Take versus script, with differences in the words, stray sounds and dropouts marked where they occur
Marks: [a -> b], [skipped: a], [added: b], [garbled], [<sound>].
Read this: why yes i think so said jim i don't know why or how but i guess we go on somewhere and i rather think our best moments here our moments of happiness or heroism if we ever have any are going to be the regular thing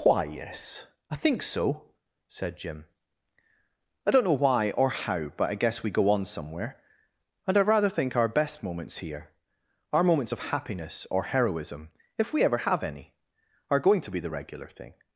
why yes i think so said jim i don't know why or how but i guess we go on somewhere and i rather think our best moments here our moments of happiness or heroism if we ever have any are going to be the regular thing